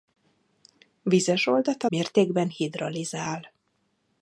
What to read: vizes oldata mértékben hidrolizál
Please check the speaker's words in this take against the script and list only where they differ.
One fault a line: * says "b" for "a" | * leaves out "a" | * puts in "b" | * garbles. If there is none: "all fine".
all fine